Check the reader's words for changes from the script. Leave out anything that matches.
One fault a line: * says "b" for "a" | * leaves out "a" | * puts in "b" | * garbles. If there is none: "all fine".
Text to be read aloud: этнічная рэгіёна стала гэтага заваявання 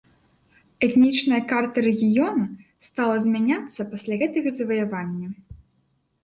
* puts in "карта"
* puts in "змяняцца пасля"